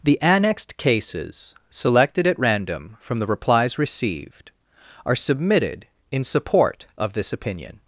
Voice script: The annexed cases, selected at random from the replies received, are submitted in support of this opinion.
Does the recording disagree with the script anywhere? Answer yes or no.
no